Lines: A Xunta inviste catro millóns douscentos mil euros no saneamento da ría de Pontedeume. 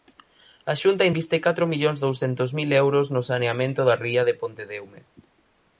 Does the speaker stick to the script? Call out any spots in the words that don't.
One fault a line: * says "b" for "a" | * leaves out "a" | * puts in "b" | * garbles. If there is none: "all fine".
all fine